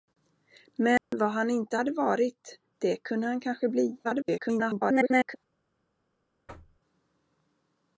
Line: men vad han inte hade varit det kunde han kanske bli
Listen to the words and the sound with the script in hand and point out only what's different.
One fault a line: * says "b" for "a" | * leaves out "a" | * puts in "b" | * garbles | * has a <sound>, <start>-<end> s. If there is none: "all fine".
* has a dropout, 1.0-1.1 s
* garbles
* has a thud, 6.5-6.8 s